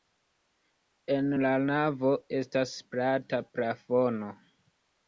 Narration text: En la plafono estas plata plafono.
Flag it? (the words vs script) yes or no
yes